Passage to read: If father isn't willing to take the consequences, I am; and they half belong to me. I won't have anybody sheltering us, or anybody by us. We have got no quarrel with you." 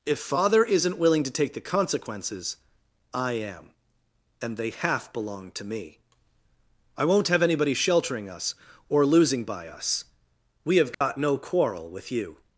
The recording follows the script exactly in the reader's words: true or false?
false